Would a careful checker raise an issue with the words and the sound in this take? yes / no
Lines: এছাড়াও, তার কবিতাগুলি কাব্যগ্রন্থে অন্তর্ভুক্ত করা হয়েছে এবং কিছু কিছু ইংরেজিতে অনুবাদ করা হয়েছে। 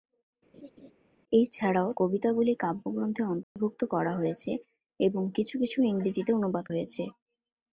yes